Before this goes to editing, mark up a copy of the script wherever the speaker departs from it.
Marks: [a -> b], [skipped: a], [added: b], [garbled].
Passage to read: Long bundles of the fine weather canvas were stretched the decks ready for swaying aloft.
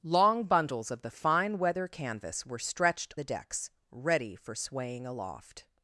Long bundles of the fine weather canvas were stretched the decks ready for swaying aloft.